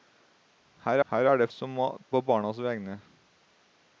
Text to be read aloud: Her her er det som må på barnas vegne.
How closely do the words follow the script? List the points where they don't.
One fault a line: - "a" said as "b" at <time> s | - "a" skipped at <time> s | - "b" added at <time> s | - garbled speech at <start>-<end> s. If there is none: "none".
none